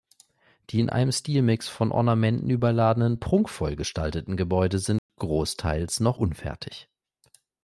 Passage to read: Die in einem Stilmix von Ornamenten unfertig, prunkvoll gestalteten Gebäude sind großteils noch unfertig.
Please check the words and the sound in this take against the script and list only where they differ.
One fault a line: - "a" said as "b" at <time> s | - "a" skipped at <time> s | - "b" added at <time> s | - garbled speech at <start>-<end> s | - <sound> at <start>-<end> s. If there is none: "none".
- "unfertig" said as "überladenen" at 2.5 s
- dropout at 5.0-5.1 s